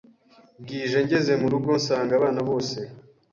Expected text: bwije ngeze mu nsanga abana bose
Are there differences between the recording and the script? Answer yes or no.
yes